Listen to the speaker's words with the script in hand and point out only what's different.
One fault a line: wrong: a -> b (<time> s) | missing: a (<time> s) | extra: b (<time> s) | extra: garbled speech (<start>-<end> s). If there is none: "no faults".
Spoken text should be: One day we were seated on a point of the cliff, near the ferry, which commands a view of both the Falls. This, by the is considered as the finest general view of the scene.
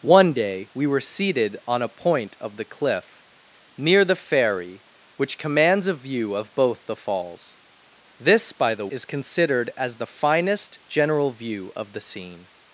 no faults